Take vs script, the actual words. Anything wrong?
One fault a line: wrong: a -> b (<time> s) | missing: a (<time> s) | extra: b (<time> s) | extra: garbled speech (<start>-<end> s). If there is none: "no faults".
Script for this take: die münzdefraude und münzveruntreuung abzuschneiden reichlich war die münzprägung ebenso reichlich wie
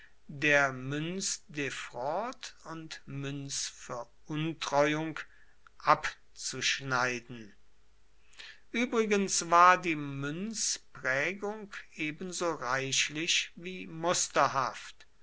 wrong: die -> der (0.3 s)
wrong: reichlich -> übrigens (8.7 s)